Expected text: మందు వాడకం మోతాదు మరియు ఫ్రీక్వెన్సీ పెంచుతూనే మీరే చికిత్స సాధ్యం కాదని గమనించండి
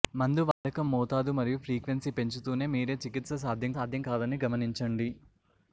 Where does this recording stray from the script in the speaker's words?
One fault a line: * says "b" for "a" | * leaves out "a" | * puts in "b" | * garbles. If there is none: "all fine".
* puts in "సాధ్యం"